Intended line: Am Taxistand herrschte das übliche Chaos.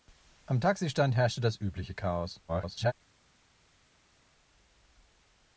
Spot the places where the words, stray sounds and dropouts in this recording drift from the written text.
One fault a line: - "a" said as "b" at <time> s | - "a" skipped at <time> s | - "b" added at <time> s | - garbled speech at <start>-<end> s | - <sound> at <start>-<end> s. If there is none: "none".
- garbled speech at 2.5-2.9 s